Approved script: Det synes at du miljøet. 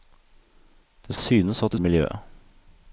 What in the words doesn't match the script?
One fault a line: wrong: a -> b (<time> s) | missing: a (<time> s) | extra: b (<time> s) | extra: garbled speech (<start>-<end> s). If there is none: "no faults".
no faults